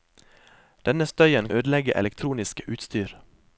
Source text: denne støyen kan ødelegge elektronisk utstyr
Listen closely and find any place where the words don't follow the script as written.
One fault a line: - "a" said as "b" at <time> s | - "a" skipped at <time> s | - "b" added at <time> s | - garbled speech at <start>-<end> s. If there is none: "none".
- "kan" skipped at 1.5 s